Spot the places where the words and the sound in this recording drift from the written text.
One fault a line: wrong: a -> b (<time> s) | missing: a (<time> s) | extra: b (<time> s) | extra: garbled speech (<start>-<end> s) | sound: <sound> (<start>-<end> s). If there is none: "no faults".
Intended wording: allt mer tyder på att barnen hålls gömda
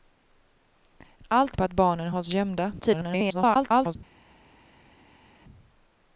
missing: mer tyder (1.6 s)
extra: garbled speech (2.8-4.0 s)